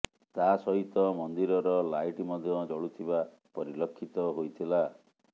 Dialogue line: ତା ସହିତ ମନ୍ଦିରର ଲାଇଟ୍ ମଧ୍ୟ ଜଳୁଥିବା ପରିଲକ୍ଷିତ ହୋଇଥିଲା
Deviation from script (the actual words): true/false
false